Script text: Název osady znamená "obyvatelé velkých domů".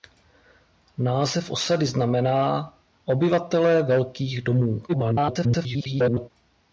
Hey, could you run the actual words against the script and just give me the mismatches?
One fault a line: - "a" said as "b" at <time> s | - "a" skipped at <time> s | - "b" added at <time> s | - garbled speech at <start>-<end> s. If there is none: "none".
- garbled speech at 4.9-6.3 s